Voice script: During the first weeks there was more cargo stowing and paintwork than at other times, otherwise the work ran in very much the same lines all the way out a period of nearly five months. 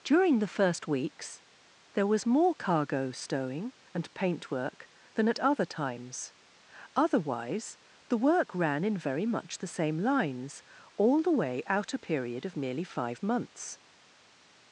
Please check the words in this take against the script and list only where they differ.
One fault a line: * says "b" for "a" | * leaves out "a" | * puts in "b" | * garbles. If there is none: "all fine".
* says "merely" for "nearly"